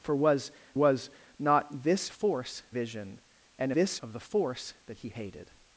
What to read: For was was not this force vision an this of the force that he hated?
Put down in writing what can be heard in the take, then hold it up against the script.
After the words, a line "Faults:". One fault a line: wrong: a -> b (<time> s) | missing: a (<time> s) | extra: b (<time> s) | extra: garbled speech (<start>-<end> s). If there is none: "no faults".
For was was not this force vision an this of the force that he hated?
Faults:
no faults